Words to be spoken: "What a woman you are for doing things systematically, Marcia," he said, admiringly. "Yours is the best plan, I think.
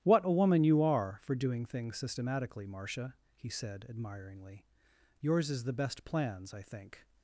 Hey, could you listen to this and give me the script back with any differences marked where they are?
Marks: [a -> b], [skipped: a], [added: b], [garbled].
"What a woman you are for doing things systematically, Marcia," he said, admiringly. "Yours is the best [plan, -> plans] I think.